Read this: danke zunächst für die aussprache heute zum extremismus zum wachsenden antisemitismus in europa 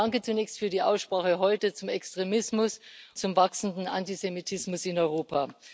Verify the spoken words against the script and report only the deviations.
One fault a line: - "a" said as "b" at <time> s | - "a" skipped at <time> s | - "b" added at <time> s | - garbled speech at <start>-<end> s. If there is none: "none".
none